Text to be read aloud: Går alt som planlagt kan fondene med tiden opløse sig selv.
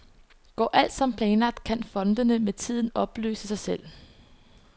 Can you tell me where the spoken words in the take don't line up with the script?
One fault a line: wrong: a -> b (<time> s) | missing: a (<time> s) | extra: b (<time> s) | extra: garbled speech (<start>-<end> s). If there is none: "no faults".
no faults